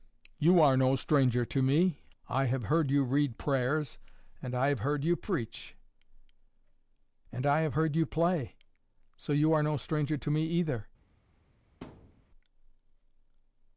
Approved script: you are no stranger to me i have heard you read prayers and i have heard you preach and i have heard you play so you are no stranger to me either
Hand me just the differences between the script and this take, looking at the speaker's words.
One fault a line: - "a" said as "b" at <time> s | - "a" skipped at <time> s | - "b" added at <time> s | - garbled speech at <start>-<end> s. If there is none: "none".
none